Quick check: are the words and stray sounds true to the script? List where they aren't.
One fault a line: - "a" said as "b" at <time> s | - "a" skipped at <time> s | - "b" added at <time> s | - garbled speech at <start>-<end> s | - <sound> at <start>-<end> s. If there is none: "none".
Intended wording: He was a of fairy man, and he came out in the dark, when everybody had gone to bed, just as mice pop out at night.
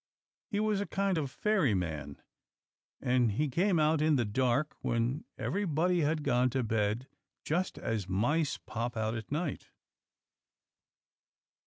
- "kind" added at 0.9 s